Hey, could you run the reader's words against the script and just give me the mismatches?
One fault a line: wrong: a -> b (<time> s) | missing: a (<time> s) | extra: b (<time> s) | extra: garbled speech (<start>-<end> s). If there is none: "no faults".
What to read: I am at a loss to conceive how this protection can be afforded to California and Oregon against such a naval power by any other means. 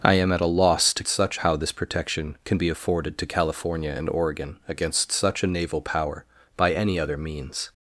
wrong: conceive -> such (1.1 s)